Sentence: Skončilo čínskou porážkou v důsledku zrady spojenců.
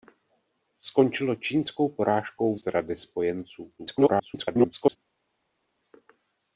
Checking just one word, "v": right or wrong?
wrong